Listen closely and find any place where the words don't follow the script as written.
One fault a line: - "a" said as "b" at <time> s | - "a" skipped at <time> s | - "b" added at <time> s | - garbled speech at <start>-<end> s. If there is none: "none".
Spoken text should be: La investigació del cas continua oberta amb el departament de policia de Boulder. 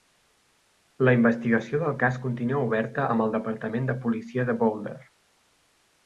none